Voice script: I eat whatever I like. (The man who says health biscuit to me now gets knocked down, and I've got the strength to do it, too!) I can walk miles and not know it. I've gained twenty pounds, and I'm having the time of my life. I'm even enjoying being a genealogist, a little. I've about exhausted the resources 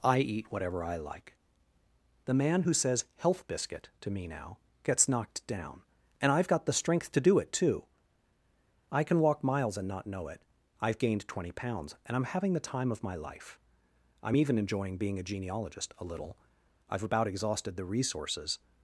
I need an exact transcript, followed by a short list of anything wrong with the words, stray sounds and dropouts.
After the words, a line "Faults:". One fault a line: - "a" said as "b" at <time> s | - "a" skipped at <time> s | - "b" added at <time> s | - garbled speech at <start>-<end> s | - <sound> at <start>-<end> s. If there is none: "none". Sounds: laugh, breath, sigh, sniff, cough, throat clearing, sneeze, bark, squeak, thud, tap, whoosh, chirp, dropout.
I eat whatever I like. (The man who says health biscuit to me now gets knocked down, and I've got the strength to do it, too!) I can walk miles and not know it. I've gained twenty pounds, and I'm having the time of my life. I'm even enjoying being a genealogist, a little. I've about exhausted the resources
Faults:
none